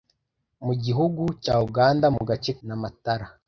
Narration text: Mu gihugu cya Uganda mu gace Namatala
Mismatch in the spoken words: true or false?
false